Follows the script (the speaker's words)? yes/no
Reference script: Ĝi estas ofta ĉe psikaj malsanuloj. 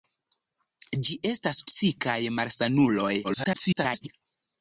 no